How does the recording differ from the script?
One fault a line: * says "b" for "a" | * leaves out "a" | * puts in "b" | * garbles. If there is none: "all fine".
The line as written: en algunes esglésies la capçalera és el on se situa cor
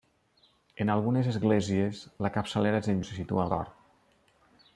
all fine